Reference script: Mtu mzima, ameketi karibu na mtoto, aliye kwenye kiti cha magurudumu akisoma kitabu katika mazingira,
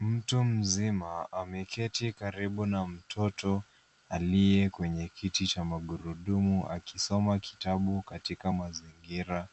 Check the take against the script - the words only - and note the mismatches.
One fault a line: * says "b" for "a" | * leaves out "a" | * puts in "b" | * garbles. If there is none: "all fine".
all fine